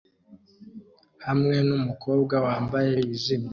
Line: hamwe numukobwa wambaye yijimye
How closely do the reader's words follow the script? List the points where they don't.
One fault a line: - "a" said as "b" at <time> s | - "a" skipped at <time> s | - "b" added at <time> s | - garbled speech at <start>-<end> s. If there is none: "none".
none